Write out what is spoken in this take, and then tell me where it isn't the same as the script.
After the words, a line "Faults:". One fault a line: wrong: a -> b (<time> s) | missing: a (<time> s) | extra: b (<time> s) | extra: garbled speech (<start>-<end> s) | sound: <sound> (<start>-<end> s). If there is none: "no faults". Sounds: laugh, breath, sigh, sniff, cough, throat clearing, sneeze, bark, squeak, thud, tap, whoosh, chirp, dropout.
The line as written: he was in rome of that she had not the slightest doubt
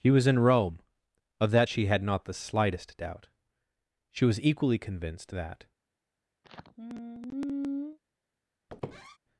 he was in rome of that she had not the slightest doubt she was equally convinced that
Faults:
extra: she was equally convinced that (4.1 s)
sound: sigh (6.4-8.0 s)
sound: squeak (8.7-9.2 s)